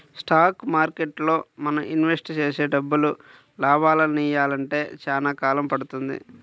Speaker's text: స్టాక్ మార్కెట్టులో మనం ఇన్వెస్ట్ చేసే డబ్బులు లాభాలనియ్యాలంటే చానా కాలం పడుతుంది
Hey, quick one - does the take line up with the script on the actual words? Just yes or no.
yes